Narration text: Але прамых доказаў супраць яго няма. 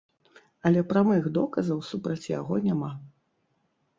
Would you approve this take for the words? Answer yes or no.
yes